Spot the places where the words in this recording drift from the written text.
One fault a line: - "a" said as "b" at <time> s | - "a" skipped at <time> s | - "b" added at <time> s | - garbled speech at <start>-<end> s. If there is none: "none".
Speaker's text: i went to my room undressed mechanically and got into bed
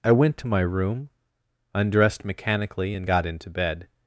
none